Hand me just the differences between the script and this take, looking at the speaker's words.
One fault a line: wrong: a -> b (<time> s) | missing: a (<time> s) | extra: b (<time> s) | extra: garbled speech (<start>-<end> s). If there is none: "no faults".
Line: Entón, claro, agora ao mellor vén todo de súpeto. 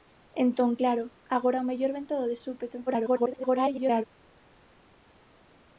extra: garbled speech (2.9-4.0 s)